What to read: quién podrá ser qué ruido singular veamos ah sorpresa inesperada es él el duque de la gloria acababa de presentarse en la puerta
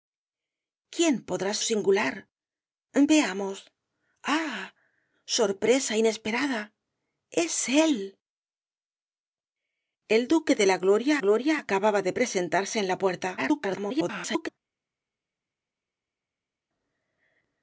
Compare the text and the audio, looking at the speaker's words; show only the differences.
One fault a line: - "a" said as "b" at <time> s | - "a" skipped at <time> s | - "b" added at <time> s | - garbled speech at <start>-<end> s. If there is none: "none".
- "ser qué ruido" skipped at 1.5 s
- "gloria" added at 11.2 s
- garbled speech at 13.4-14.5 s